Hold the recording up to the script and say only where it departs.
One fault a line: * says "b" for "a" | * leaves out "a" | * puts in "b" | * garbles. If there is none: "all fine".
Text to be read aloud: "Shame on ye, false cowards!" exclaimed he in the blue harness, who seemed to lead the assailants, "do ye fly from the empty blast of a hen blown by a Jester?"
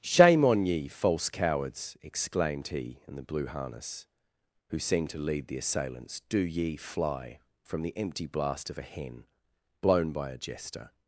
all fine